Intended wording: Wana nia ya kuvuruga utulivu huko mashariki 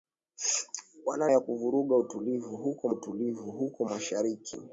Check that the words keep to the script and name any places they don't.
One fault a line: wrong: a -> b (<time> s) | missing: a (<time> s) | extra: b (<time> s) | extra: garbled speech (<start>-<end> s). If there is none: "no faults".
missing: nia (1.3 s)
extra: utulivu huko (2.9 s)